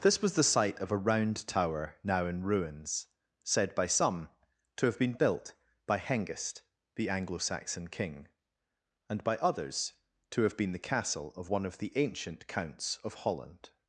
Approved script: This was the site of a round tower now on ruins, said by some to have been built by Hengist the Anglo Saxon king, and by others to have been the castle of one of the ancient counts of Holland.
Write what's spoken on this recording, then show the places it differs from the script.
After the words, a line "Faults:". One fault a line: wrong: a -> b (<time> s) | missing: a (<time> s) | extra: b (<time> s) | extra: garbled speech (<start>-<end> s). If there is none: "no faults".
This was the site of a round tower now in ruins, said by some to have been built by Hengist the Anglo Saxon king, and by others to have been the castle of one of the ancient counts of Holland.
Faults:
wrong: on -> in (2.2 s)